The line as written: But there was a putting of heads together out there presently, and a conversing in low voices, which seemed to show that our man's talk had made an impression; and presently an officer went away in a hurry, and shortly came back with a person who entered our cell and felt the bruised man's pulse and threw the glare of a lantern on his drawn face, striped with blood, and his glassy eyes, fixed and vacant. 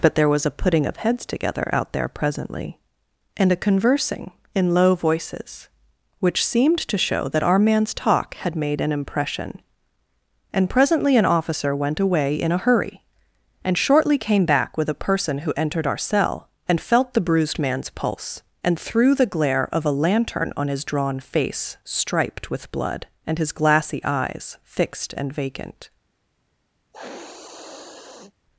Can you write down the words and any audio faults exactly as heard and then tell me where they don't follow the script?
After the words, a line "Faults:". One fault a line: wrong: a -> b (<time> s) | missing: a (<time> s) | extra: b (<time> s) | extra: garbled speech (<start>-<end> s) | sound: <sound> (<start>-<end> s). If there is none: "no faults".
But there was a putting of heads together out there presently, and a conversing in low voices, which seemed to show that our man's talk had made an impression; and presently an officer went away in a hurry, and shortly came back with a person who entered our cell and felt the bruised man's pulse and threw the glare of a lantern on his drawn face, striped with blood, and his glassy eyes, fixed and vacant.
Faults:
sound: sniff (26.9-28.3 s)